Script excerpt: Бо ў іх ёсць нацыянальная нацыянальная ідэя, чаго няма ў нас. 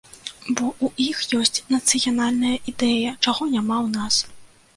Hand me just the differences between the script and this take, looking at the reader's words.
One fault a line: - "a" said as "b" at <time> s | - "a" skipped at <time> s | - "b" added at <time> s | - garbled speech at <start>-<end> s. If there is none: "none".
- "нацыянальная" skipped at 2.5 s